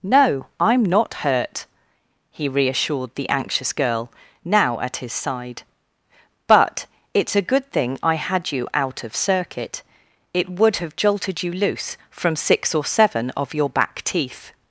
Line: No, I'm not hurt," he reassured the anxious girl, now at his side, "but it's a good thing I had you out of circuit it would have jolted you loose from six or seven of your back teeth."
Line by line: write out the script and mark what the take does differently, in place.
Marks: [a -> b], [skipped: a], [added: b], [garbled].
No, I'm not hurt," he reassured the anxious girl, now at his side, "but it's a good thing I had you out of circuit it would have jolted you loose from six or seven of your back teeth."